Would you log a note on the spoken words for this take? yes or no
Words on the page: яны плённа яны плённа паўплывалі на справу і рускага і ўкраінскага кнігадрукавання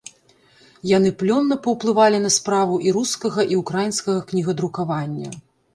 yes